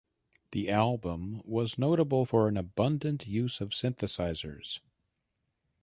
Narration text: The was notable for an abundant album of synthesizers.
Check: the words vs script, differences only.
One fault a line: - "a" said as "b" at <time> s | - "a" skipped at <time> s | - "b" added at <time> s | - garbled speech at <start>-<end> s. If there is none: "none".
- "album" added at 0.7 s
- "album" said as "use" at 3.3 s